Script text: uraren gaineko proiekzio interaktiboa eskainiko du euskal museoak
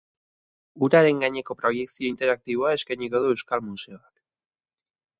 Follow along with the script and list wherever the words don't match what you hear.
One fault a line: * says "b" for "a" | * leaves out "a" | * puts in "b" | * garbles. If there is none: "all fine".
all fine